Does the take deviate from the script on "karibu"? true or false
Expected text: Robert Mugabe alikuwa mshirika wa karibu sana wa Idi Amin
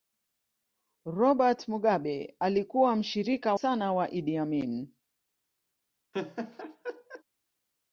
true